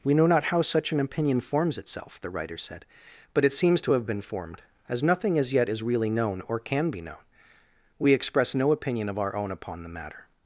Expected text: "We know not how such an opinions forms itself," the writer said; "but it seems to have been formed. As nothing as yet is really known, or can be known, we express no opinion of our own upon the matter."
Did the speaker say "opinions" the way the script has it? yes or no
no